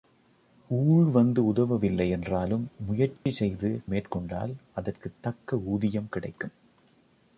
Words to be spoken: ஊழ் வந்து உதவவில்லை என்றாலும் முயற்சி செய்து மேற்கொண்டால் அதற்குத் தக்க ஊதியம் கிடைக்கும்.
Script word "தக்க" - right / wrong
right